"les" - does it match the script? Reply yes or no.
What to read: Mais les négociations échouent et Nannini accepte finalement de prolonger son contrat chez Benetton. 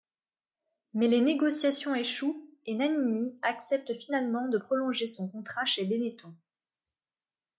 yes